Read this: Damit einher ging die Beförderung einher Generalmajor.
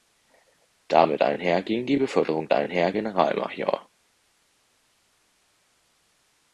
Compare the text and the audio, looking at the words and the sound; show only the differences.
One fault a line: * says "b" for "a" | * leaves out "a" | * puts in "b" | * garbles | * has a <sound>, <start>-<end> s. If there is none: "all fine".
all fine